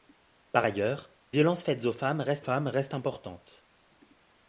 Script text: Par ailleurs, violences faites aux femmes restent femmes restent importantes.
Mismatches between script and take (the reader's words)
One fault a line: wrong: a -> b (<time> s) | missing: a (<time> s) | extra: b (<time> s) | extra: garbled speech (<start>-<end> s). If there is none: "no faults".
no faults